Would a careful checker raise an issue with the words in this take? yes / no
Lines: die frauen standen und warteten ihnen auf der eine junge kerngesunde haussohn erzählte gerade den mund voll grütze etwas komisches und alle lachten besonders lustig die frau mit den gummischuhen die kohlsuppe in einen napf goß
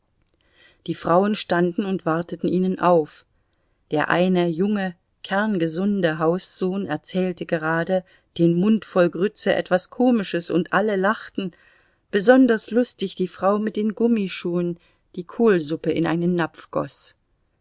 no